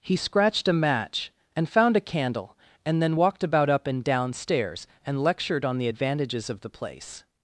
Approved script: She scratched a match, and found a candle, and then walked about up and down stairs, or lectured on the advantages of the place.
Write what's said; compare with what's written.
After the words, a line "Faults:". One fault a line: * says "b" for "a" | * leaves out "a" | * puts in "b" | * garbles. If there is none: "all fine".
He scratched a match, and found a candle, and then walked about up and down stairs, and lectured on the advantages of the place.
Faults:
* says "He" for "She"
* says "and" for "or"